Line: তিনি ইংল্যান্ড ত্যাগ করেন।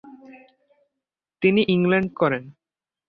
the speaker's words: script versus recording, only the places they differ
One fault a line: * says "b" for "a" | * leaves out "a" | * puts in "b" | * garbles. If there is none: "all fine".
* leaves out "ত্যাগ"